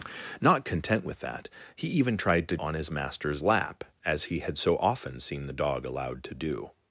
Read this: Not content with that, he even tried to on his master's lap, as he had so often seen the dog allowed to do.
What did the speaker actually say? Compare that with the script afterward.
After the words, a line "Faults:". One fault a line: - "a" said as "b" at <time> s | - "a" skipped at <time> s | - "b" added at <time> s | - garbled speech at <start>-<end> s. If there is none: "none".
Not content with that, he even tried to on his master's lap, as he had so often seen the dog allowed to do.
Faults:
none